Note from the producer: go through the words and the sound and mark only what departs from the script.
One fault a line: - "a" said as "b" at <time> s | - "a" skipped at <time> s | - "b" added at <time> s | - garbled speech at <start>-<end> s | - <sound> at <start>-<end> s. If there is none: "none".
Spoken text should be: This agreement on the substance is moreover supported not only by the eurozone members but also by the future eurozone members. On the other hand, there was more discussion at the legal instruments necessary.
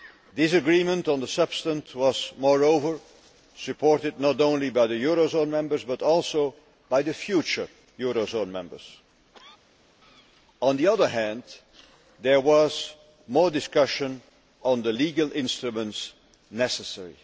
- "is" said as "was" at 1.9 s
- "at" said as "on" at 14.6 s